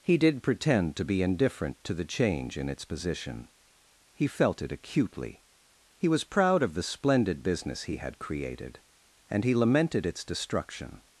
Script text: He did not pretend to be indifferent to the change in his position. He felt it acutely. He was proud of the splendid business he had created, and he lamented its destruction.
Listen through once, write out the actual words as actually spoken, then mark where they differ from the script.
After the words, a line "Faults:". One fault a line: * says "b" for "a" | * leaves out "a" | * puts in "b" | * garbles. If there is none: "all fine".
He did pretend to be indifferent to the change in its position. He felt it acutely. He was proud of the splendid business he had created, and he lamented its destruction.
Faults:
* leaves out "not"
* says "its" for "his"